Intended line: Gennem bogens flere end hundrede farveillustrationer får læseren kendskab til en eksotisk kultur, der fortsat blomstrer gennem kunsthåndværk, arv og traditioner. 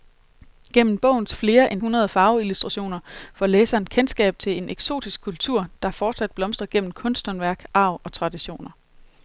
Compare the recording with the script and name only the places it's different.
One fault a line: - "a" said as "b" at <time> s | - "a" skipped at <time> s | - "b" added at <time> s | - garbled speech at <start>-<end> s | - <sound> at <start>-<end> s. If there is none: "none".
none